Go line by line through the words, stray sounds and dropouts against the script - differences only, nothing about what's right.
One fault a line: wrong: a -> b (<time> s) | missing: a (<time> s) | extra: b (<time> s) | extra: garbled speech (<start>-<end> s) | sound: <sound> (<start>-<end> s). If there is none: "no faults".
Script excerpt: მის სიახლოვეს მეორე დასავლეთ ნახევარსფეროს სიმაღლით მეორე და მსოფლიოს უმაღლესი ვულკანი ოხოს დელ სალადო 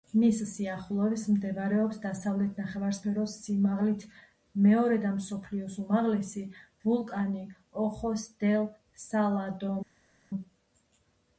wrong: მეორე -> მდებარეობს (1.3 s)